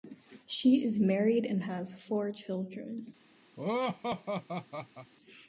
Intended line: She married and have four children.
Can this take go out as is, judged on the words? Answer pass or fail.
fail